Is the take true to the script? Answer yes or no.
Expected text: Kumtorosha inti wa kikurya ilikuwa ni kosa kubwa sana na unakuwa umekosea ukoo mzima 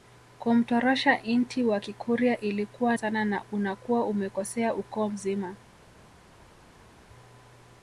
no